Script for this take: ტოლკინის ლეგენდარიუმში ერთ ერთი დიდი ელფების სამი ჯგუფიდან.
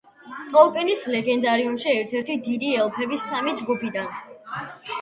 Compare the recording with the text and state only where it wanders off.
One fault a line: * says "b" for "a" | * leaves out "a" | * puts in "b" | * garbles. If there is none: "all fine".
all fine